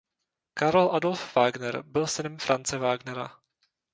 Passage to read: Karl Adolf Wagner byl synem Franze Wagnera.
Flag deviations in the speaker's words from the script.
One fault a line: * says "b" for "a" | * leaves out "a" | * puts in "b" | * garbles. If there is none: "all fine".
all fine